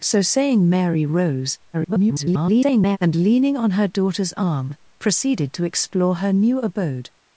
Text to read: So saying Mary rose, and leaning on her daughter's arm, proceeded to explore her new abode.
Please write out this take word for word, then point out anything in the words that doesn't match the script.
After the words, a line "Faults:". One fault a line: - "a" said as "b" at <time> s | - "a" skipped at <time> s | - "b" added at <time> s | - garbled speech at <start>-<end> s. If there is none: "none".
So saying Mary rose, [garbled] and leaning on her daughter's arm, proceeded to explore her new abode.
Faults:
- garbled speech at 1.7-3.0 s